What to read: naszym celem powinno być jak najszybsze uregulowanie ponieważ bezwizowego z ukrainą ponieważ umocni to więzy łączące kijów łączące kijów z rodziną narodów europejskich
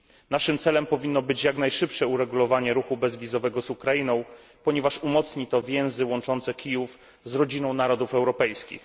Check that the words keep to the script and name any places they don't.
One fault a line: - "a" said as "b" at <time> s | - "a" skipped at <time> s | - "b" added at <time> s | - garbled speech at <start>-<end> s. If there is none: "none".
- "ponieważ" said as "ruchu" at 2.7 s
- "łączące kijów" skipped at 7.0 s